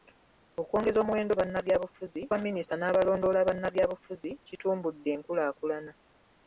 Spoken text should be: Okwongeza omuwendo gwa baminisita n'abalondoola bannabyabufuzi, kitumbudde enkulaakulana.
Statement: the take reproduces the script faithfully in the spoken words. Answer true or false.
false